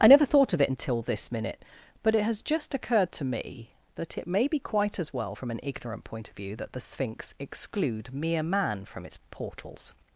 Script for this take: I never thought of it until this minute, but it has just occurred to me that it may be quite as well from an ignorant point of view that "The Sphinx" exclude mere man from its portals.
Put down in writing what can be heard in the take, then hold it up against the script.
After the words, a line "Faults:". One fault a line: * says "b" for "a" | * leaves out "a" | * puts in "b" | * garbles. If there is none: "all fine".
I never thought of it until this minute, but it has just occurred to me that it may be quite as well from an ignorant point of view that "The Sphinx" exclude mere man from its portals.
Faults:
all fine